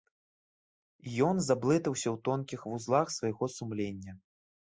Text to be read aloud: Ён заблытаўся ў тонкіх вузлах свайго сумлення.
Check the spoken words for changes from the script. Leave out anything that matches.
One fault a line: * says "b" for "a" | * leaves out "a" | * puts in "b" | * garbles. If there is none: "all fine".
all fine